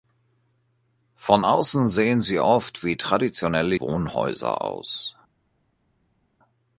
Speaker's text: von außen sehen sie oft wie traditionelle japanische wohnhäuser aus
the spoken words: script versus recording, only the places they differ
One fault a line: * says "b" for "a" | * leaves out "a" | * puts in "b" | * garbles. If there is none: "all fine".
* leaves out "japanische"